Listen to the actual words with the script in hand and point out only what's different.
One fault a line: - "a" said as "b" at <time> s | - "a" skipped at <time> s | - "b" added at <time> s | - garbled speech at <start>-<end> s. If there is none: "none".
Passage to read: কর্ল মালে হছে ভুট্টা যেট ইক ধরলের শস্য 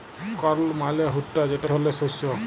- "হছে" skipped at 1.0 s
- "ইক" skipped at 1.6 s